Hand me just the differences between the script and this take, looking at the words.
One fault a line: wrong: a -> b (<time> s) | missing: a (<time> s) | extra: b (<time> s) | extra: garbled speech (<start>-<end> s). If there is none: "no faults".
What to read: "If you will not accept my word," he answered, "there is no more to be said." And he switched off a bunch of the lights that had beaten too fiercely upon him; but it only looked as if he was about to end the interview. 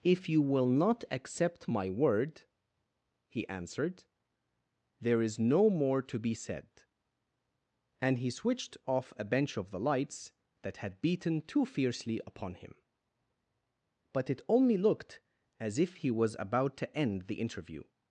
wrong: bunch -> bench (9.2 s)